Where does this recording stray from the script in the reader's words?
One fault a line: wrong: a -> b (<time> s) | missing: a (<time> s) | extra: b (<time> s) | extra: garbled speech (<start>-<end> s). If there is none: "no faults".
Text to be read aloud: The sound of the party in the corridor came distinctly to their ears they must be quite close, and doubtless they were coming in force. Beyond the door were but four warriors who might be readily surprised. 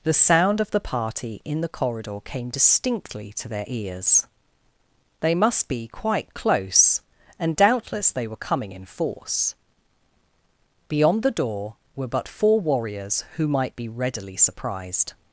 no faults